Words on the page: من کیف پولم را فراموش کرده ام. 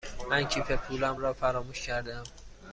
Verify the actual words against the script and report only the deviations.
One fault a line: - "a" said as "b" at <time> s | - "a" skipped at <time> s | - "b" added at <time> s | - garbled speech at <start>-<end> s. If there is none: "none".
none